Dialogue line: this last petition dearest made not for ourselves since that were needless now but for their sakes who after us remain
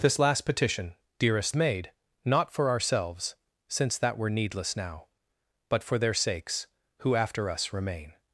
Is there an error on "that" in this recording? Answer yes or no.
no